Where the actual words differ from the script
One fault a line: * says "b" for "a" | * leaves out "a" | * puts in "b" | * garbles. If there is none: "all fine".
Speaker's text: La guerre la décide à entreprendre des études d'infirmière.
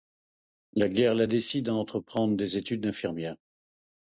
all fine